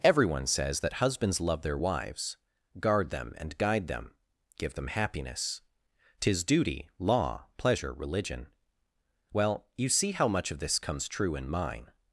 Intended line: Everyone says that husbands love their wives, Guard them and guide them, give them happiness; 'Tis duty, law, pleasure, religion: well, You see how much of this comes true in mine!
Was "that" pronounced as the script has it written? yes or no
yes